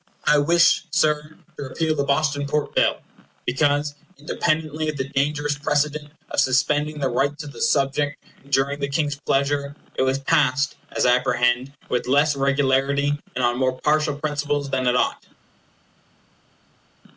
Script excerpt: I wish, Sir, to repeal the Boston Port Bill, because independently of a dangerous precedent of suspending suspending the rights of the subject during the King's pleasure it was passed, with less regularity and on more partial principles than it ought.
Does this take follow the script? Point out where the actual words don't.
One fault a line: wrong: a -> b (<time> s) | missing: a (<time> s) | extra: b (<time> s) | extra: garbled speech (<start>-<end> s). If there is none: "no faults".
wrong: a -> the (5.0 s)
missing: suspending (7.0 s)
extra: as I apprehend (10.9 s)